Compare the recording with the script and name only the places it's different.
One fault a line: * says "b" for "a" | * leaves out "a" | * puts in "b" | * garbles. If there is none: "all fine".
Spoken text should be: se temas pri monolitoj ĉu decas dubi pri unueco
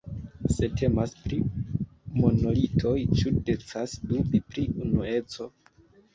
all fine